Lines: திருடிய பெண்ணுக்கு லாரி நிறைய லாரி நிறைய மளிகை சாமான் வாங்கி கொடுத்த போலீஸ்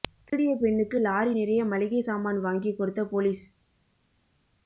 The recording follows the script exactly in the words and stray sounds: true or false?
false